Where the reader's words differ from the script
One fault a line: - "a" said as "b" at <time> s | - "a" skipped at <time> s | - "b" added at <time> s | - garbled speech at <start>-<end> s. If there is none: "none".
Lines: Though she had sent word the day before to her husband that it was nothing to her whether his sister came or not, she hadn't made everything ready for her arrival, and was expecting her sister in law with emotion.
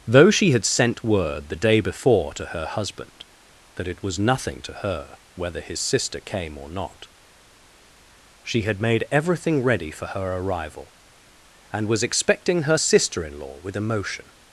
- "hadn't" said as "had" at 8.6 s